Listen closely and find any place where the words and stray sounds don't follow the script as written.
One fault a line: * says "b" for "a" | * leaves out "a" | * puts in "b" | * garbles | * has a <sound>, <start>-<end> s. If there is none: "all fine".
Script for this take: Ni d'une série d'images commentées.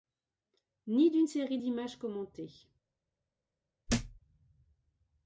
* has a thud, 3.9-4.2 s